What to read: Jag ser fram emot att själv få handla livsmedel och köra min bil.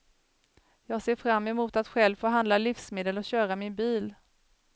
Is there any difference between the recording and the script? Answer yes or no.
no